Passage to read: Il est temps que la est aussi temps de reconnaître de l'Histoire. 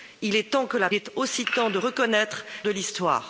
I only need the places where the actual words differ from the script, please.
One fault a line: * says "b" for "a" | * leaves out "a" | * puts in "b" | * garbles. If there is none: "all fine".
all fine